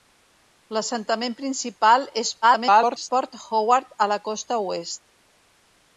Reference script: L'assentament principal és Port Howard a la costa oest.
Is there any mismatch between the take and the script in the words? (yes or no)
yes